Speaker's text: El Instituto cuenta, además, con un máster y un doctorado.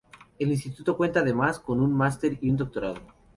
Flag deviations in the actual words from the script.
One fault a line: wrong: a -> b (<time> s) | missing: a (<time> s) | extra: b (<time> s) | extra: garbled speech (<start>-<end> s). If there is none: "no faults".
no faults